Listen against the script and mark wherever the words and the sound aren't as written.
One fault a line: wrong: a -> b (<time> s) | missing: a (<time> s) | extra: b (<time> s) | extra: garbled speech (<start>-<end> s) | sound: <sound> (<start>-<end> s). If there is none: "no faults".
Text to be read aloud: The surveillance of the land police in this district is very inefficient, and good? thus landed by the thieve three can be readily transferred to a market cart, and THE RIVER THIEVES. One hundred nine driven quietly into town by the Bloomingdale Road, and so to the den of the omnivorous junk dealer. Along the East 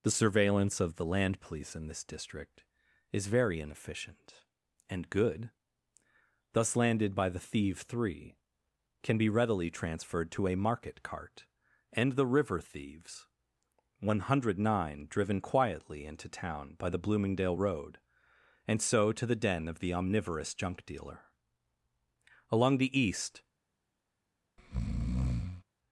sound: breath (24.6-25.6 s)